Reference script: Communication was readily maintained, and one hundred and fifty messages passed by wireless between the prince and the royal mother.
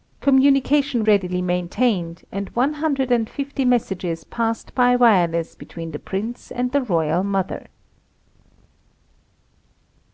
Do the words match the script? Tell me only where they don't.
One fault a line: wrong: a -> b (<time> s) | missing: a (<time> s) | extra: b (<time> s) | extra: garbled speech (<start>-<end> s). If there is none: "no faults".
missing: was (1.0 s)